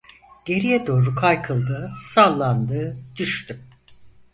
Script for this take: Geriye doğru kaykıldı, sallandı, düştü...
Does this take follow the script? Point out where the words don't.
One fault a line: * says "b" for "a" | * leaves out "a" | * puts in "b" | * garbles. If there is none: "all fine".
all fine